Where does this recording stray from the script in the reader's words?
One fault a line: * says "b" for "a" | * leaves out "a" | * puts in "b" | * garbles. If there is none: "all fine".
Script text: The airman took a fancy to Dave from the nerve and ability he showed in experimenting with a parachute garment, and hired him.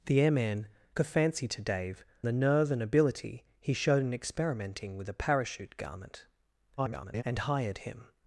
* leaves out "took"
* leaves out "from"
* garbles